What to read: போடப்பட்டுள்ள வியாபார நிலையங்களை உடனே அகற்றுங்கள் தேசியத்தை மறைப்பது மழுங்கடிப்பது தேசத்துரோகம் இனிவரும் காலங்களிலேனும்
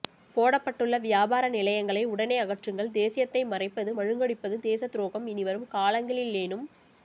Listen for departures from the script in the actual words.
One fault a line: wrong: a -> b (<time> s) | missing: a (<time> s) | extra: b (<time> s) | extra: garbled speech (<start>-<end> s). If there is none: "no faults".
no faults